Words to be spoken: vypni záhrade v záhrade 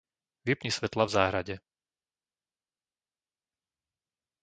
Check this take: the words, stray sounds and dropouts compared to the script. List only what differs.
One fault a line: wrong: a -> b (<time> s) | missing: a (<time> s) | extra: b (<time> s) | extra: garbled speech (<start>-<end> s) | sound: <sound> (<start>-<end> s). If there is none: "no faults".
wrong: záhrade -> svetlá (0.7 s)